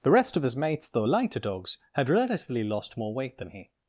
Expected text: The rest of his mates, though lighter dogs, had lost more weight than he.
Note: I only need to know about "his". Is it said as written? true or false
true